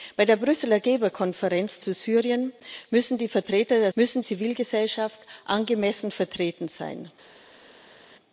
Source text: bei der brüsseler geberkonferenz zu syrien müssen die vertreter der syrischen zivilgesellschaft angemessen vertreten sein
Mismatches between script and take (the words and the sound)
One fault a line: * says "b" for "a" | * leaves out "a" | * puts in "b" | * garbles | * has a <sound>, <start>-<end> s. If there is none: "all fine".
* says "müssen" for "syrischen"